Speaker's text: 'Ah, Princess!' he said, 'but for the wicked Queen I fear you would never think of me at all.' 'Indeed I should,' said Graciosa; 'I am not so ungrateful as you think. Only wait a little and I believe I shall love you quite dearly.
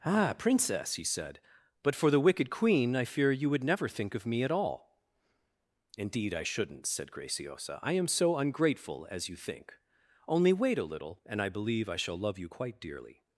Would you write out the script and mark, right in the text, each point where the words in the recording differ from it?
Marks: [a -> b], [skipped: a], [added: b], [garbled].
'Ah, Princess!' he said, 'but for the wicked Queen I fear you would never think of me at all.' 'Indeed I [should,' -> shouldn't] said Graciosa; 'I am [skipped: not] so ungrateful as you think. Only wait a little and I believe I shall love you quite dearly.